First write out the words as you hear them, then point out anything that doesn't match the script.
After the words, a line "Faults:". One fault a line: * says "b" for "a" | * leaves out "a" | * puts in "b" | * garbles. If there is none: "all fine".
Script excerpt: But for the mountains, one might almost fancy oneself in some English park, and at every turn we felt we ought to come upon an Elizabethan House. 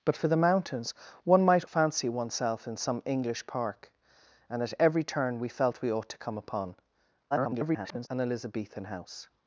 But for the mountains, one might fancy oneself in some English park, and at every turn we felt we ought to come upon [garbled] an Elizabethan House.
Faults:
* leaves out "almost"
* garbles